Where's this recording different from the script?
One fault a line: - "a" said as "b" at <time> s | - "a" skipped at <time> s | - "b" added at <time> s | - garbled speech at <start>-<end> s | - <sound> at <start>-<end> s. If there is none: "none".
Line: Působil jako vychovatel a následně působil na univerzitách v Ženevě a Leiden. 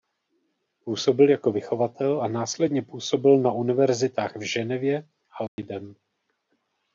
- dropout at 5.5-5.6 s